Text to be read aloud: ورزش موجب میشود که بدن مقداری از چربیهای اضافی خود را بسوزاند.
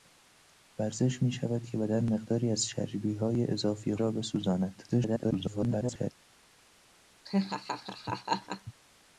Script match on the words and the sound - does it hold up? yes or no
no